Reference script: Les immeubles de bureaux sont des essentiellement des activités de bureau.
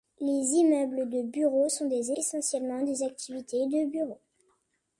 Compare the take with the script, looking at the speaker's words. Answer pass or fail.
pass